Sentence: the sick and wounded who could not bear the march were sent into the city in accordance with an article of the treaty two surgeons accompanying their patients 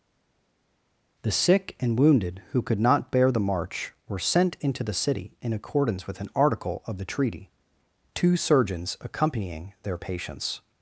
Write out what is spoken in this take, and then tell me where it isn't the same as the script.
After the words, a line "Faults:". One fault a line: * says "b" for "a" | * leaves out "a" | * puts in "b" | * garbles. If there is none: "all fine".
the sick and wounded who could not bear the march were sent into the city in accordance with an article of the treaty two surgeons accompanying their patients
Faults:
all fine